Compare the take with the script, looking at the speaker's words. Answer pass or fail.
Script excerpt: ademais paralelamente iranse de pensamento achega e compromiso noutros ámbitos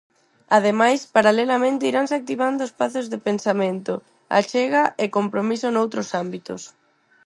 fail